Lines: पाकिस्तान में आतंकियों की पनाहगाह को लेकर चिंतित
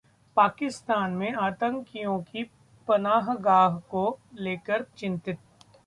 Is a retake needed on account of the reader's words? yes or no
no